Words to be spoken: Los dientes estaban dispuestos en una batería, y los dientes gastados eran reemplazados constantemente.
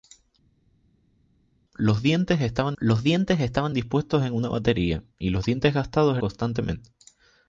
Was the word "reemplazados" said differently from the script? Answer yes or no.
yes